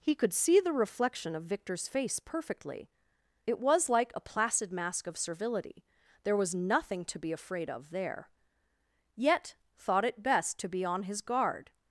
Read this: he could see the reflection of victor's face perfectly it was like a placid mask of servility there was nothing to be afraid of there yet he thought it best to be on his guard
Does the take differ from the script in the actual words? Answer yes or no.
yes